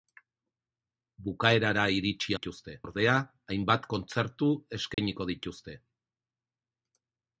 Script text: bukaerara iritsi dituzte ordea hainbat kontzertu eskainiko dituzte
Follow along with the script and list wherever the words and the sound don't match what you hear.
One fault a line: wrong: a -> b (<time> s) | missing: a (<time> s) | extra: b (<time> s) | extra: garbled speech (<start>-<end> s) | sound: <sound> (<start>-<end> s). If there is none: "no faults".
sound: dropout (4.9-5.0 s)